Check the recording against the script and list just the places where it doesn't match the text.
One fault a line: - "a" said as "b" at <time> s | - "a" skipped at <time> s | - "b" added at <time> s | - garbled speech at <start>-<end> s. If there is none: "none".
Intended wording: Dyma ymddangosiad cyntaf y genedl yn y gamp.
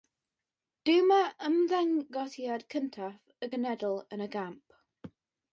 none